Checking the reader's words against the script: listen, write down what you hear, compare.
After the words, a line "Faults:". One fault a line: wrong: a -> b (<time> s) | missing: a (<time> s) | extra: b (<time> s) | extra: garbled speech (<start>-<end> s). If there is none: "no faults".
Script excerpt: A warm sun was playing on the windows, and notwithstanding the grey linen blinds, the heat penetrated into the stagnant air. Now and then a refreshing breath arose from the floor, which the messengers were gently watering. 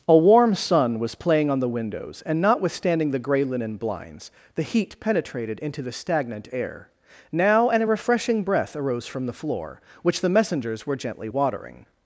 A warm sun was playing on the windows, and notwithstanding the grey linen blinds, the heat penetrated into the stagnant air. Now and a refreshing breath arose from the floor, which the messengers were gently watering.
Faults:
missing: then (7.8 s)